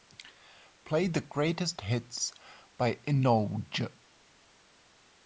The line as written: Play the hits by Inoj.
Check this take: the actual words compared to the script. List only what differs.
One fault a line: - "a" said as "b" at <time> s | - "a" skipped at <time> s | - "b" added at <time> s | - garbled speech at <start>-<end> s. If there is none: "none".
- "greatest" added at 1.2 s